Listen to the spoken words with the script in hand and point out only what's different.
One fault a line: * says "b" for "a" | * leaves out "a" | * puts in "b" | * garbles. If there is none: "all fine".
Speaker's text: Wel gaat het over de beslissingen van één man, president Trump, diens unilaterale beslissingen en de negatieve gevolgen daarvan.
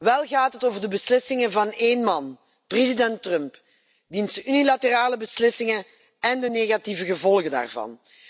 all fine